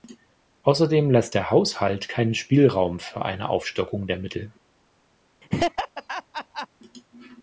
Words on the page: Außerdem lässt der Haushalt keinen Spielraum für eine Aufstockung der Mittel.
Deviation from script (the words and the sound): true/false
true